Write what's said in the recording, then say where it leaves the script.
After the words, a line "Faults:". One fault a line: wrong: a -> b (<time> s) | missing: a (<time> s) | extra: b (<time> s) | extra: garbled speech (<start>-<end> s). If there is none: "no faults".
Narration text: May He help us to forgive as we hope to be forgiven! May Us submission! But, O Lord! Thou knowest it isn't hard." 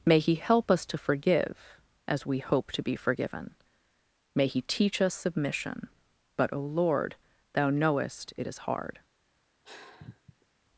May He help us to forgive as we hope to be forgiven! May He teach us submission! But, O Lord! Thou knowest it is hard."
Faults:
extra: He teach (4.5 s)
wrong: isn't -> is (8.5 s)